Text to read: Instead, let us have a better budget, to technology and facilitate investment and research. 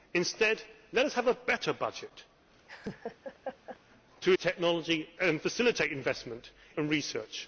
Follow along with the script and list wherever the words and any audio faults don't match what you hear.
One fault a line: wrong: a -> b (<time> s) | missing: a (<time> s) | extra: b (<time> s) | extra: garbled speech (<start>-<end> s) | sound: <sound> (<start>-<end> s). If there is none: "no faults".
sound: laugh (2.7-3.8 s)